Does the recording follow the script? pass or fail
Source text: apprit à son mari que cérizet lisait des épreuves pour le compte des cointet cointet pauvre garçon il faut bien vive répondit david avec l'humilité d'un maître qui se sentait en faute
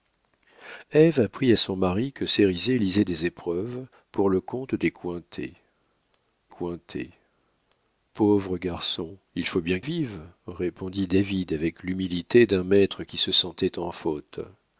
pass